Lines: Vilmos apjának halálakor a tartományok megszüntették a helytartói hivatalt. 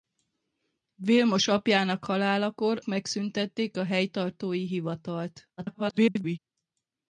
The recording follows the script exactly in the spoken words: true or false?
false